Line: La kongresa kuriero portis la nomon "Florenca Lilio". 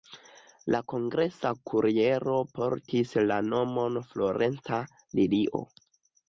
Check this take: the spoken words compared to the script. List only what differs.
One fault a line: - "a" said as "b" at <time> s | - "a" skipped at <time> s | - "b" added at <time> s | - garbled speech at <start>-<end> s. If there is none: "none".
none